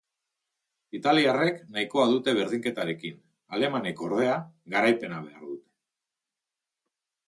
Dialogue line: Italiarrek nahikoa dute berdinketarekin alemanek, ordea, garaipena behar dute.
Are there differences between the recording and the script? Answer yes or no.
no